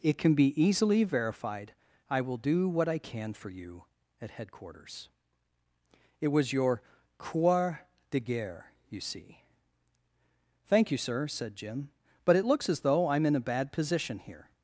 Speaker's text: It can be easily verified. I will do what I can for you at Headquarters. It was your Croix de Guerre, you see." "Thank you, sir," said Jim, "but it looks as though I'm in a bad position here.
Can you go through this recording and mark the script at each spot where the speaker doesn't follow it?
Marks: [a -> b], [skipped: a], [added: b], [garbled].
It can be easily verified. I will do what I can for you at Headquarters. It was your Croix de Guerre, you see." "Thank you, sir," said Jim, "but it looks as though I'm in a bad position here.